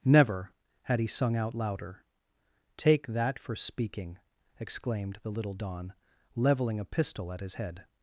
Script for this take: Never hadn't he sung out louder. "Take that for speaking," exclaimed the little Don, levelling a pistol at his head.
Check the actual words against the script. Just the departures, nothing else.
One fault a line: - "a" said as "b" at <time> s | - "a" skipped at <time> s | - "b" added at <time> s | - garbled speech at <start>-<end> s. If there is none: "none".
- "hadn't" said as "had" at 0.8 s